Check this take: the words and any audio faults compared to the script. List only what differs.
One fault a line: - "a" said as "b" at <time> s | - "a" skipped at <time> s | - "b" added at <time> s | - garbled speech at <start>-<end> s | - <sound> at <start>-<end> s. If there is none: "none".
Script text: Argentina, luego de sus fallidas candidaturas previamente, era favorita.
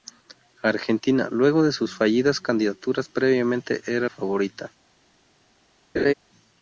- laugh at 6.0-6.1 s